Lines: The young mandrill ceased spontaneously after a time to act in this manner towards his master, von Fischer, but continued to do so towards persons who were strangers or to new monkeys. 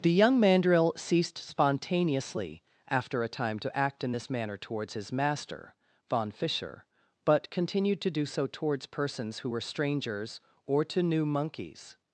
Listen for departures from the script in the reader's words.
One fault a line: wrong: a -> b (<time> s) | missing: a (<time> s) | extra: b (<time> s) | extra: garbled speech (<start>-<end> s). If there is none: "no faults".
no faults